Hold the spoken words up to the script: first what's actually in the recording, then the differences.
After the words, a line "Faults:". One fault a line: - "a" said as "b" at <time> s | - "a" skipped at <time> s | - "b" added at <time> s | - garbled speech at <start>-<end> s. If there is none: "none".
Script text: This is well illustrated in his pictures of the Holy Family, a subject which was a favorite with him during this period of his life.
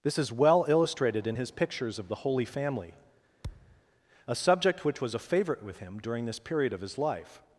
This is well illustrated in his pictures of the Holy Family, a subject which was a favorite with him during this period of his life.
Faults:
none